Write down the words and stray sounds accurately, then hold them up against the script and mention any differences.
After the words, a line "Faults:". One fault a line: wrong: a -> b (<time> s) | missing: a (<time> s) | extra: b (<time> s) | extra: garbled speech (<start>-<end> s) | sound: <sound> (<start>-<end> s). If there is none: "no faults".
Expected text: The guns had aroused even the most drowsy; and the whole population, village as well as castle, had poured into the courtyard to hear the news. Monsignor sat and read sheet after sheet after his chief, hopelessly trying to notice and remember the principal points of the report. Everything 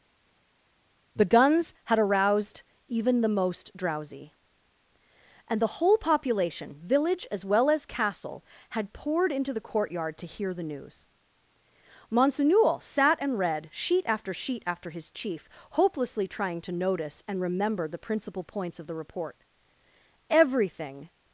The guns had aroused even the most drowsy; and the whole population, village as well as castle, had poured into the courtyard to hear the news. Monsignor sat and read sheet after sheet after his chief, hopelessly trying to notice and remember the principal points of the report. Everything
Faults:
no faults